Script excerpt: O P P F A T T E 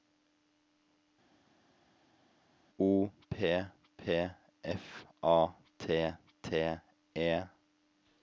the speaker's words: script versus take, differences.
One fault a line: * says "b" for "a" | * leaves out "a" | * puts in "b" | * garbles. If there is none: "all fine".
all fine